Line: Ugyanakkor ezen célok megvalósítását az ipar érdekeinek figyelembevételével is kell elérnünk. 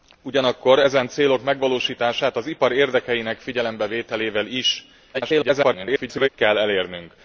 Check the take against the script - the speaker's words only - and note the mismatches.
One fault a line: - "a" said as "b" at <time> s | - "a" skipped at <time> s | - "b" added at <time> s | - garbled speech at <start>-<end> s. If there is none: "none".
- garbled speech at 5.1-6.3 s